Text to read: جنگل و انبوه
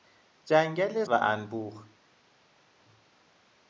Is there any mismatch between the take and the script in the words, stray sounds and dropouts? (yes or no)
no